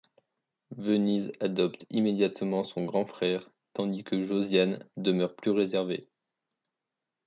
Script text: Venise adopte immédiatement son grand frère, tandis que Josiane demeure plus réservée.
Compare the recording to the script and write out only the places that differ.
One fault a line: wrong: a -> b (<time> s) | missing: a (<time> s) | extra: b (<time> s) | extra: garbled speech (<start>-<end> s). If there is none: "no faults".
no faults